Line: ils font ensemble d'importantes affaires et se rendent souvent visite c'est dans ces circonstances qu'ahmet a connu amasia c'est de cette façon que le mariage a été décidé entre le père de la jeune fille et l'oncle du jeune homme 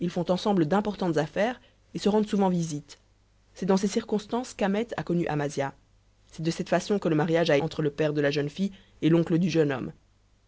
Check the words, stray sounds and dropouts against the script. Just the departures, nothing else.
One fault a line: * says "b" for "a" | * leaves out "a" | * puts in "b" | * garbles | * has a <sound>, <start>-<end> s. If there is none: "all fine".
* leaves out "été décidé"